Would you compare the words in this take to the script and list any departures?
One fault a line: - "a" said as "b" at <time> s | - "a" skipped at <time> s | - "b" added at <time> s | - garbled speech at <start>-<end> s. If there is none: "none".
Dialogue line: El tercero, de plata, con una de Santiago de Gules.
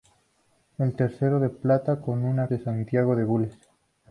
none